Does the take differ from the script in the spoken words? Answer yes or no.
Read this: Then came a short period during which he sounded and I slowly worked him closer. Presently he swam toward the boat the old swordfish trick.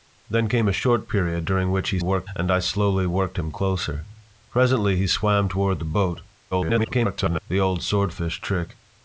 yes